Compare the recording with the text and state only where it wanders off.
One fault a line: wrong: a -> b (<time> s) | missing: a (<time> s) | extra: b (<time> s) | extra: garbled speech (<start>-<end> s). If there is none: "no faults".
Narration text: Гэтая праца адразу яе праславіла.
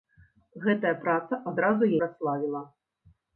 missing: яе (1.9 s)